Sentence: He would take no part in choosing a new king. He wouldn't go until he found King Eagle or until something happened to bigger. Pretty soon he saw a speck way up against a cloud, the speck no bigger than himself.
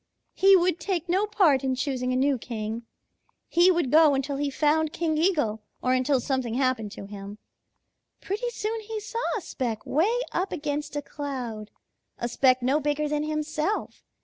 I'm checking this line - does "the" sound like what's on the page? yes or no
no